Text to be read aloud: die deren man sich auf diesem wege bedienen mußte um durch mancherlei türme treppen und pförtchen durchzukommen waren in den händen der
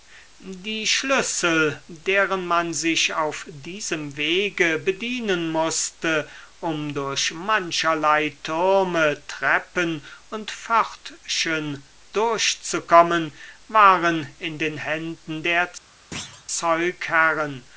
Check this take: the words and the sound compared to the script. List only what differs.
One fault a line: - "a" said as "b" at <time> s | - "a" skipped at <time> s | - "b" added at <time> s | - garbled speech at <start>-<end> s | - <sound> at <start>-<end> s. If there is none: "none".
- "schlüssel" added at 0.9 s
- thud at 16.1-16.5 s